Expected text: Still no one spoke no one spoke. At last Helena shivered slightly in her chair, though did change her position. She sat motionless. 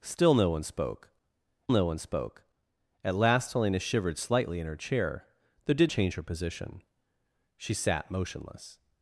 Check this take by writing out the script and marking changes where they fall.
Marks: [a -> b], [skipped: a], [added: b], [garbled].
Still no one spoke no one spoke. At last Helena shivered slightly in her chair, though did change her position. She sat motionless.